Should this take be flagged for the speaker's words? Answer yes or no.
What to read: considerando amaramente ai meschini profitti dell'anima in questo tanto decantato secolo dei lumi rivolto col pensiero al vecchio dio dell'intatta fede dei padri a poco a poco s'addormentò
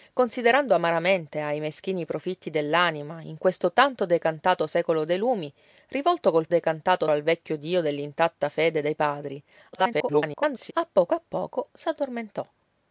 yes